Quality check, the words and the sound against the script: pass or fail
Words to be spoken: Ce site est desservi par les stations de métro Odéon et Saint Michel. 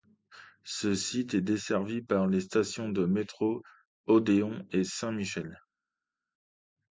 pass